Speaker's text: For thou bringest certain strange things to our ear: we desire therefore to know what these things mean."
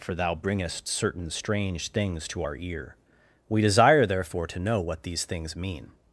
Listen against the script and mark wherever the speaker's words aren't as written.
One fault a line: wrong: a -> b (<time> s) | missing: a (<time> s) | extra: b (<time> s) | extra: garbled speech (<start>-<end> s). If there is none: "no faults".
no faults